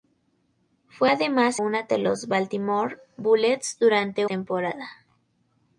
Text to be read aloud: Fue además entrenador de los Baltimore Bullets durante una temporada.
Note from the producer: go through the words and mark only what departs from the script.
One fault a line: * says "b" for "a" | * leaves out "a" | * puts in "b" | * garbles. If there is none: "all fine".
* says "una" for "entrenador"
* leaves out "una"